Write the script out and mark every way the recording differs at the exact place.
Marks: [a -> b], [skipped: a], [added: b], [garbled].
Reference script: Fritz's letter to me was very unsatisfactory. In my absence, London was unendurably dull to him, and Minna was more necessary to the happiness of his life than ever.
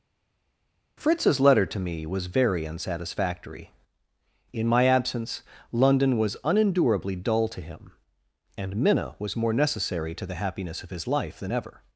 Fritz's letter to me was very unsatisfactory. In my absence, London was unendurably dull to him, and Minna was more necessary to the happiness of his life than ever.